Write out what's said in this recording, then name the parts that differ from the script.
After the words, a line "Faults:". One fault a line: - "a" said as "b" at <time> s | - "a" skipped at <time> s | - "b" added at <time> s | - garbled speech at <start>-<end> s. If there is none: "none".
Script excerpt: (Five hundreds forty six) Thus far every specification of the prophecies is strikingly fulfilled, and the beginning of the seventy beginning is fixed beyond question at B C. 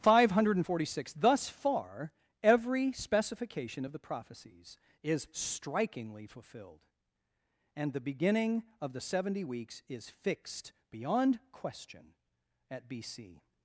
(Five hundred forty six) Thus far every specification of the prophecies is strikingly fulfilled, and the beginning of the seventy weeks is fixed beyond question at B C.
Faults:
- "hundreds" said as "hundred" at 0.3 s
- "beginning" said as "weeks" at 9.4 s